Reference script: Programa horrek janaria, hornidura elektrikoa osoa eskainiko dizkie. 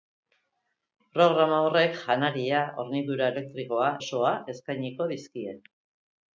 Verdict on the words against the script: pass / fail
pass